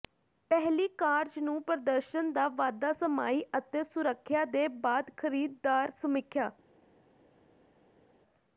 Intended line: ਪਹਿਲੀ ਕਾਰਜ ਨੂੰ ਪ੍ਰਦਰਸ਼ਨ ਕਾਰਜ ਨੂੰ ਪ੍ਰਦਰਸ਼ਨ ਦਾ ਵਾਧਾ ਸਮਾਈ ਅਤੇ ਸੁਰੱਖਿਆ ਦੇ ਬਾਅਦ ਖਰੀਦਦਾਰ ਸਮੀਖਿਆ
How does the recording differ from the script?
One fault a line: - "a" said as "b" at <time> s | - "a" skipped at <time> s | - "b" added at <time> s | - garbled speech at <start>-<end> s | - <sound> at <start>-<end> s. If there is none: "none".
- "ਕਾਰਜ ਨੂੰ ਪ੍ਰਦਰਸ਼ਨ" skipped at 2.3 s